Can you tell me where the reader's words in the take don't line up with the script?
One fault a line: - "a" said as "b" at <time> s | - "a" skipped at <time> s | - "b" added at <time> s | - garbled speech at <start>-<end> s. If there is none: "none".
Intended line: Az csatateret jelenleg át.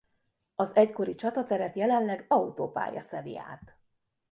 - "egykori" added at 0.8 s
- "autópálya szeli" added at 2.3 s